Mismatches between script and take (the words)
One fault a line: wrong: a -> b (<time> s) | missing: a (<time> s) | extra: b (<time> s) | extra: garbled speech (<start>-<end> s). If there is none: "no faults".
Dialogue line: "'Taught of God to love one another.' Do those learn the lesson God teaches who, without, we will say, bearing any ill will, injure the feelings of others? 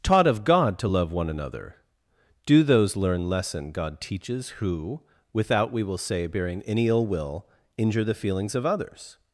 missing: the (3.3 s)